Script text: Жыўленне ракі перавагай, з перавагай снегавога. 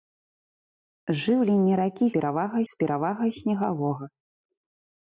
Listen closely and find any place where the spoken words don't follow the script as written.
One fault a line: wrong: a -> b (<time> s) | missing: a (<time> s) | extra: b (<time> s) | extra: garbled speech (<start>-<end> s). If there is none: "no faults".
no faults